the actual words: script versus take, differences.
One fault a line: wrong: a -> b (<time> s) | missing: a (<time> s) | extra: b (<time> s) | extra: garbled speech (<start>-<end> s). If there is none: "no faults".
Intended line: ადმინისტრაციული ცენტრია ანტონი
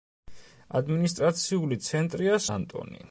no faults